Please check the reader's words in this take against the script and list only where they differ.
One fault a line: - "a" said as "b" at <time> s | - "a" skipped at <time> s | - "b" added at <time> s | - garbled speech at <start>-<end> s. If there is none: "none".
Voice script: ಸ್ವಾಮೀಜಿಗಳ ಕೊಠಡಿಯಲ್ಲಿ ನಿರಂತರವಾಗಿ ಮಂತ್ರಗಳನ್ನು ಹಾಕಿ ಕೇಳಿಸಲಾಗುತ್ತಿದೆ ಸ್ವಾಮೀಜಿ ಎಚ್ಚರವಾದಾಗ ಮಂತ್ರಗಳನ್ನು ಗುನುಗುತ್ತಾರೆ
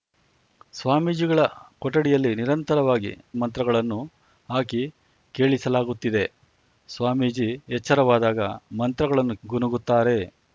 none